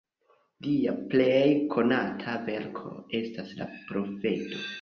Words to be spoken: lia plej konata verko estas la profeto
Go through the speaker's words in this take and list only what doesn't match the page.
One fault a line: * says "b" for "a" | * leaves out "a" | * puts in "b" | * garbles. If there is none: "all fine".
all fine